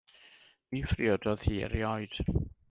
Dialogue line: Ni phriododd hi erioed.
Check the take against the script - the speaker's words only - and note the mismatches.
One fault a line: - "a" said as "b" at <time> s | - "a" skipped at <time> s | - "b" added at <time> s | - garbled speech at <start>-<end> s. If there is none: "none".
none